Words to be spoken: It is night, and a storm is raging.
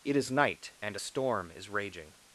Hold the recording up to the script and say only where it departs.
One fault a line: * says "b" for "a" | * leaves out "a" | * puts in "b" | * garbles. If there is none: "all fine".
all fine